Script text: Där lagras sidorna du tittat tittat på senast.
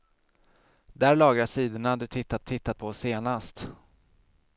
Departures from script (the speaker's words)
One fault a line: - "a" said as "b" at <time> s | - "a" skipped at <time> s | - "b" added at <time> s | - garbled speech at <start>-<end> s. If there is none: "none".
none